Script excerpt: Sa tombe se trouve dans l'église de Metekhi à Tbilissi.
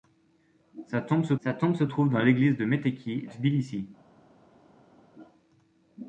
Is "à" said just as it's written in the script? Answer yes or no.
no